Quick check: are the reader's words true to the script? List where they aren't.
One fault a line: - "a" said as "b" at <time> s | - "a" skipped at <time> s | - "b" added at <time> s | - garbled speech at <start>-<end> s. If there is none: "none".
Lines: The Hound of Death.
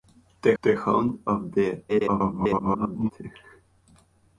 - "the" added at 0.6 s
- garbled speech at 1.9-3.1 s